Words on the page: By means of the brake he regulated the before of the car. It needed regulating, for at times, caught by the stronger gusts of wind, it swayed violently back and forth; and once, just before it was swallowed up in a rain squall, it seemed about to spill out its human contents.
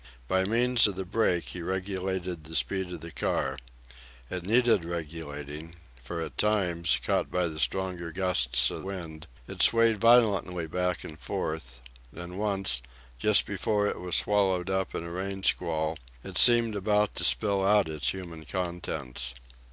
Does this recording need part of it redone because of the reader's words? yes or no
yes